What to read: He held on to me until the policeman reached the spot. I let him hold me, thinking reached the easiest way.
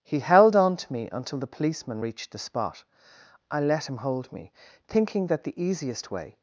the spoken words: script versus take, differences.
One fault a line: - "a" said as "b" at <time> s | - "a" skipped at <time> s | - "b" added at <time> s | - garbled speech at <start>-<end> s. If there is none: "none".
- "reached" said as "that" at 5.3 s